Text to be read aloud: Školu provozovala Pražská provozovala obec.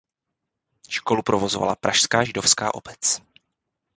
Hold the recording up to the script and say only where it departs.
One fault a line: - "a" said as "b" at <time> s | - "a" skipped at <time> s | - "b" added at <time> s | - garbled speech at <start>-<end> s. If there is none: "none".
- "provozovala" said as "židovská" at 2.2 s